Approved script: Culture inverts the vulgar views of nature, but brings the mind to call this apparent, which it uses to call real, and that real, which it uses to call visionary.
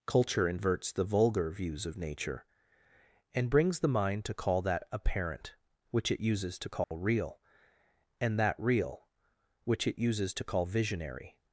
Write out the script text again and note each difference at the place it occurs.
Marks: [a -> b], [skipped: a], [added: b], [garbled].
Culture inverts the vulgar views of nature, [but -> and] brings the mind to call [this -> that] apparent, which it uses to call real, and that real, which it uses to call visionary.